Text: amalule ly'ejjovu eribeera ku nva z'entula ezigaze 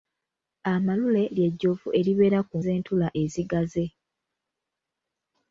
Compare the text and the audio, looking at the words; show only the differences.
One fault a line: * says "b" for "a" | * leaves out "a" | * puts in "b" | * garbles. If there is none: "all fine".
* leaves out "nva"